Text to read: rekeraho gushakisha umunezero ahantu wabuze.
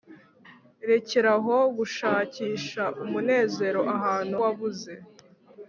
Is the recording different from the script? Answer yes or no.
no